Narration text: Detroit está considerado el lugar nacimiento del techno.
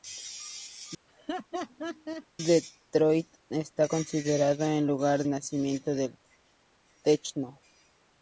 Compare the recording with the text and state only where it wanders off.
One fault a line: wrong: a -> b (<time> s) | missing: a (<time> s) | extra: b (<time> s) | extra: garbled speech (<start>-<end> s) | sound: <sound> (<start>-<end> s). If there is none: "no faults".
sound: laugh (1.1-2.3 s)